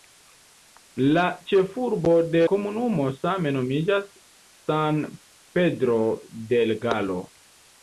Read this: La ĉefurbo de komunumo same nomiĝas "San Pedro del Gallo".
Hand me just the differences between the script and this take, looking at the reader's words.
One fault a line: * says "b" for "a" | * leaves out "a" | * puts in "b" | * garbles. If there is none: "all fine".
all fine